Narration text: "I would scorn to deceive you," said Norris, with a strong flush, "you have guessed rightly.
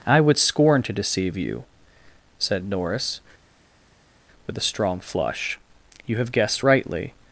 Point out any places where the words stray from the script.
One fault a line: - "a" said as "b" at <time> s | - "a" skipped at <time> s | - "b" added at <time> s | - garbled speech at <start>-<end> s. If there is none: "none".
none